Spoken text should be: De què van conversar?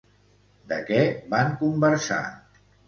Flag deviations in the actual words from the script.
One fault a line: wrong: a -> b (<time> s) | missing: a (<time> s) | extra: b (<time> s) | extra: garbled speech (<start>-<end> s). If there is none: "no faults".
no faults